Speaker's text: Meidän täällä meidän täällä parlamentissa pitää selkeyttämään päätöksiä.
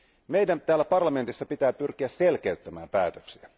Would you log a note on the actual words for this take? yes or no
yes